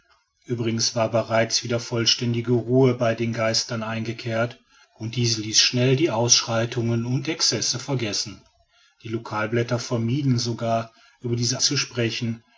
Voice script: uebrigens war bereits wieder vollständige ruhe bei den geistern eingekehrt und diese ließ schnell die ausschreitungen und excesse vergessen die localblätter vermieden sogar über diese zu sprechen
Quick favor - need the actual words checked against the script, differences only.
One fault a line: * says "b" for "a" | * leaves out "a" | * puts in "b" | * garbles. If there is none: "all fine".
all fine